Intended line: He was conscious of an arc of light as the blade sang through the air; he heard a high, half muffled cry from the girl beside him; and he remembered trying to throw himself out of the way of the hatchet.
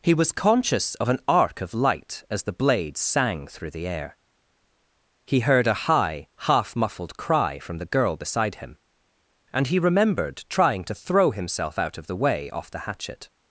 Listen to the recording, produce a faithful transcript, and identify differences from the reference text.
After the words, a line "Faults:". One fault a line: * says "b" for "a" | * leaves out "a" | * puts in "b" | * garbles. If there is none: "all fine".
He was conscious of an arc of light as the blade sang through the air; he heard a high, half muffled cry from the girl beside him; and he remembered trying to throw himself out of the way off the hatchet.
Faults:
* says "off" for "of"